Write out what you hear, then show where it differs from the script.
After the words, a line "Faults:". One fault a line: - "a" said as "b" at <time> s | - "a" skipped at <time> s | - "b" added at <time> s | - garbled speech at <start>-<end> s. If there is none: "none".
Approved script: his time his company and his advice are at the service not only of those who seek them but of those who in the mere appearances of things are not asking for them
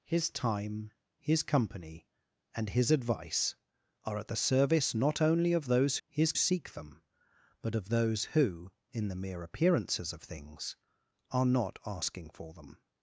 his time his company and his advice are at the service not only of those his seek them but of those who in the mere appearances of things are not asking for them
Faults:
- "who" said as "his" at 6.1 s